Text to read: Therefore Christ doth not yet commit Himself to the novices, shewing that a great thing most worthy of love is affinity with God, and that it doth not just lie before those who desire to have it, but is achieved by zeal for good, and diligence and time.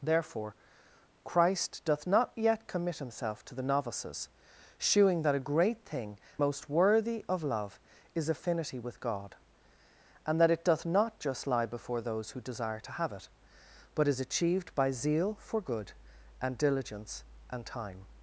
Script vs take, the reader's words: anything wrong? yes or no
no